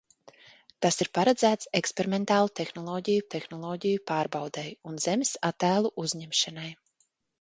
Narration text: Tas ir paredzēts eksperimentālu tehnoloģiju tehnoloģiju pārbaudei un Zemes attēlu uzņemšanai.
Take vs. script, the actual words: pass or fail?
pass